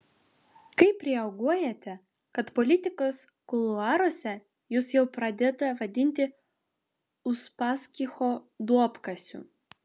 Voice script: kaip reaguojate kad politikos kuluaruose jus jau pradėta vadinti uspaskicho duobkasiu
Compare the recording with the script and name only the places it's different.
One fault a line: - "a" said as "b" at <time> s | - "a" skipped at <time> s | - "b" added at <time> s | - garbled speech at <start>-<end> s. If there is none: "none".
none